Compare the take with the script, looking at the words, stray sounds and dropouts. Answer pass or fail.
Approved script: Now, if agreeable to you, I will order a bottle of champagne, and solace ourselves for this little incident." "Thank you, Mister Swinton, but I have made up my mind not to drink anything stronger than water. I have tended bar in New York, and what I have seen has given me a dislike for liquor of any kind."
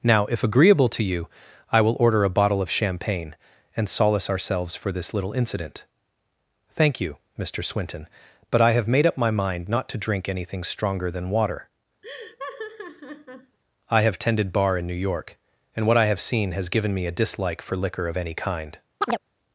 fail